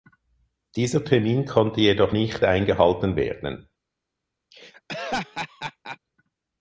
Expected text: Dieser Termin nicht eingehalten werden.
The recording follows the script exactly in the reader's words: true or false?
false